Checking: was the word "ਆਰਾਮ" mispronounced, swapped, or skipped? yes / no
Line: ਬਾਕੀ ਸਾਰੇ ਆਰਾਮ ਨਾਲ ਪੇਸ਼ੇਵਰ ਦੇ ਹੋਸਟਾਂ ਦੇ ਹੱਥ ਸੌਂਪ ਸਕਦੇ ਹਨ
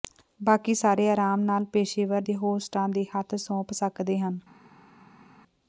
no